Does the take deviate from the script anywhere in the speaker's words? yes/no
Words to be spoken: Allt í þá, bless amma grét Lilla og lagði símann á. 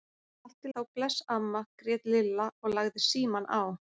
no